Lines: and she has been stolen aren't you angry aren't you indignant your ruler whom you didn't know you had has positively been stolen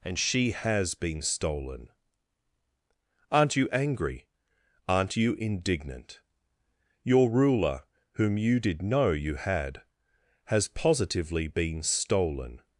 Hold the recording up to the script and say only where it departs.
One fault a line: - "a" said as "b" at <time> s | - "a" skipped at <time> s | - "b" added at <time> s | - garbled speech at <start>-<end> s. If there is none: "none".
- "didn't" said as "did" at 8.6 s